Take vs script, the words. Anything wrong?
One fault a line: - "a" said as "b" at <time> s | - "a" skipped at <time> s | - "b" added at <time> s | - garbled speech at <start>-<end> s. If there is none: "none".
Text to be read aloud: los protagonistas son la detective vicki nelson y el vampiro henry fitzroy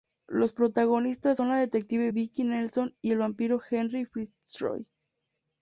none